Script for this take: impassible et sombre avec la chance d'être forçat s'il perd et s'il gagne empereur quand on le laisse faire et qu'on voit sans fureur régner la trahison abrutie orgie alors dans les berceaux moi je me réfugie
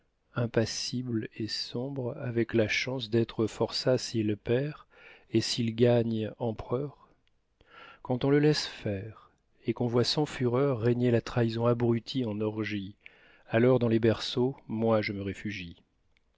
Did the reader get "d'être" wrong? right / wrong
right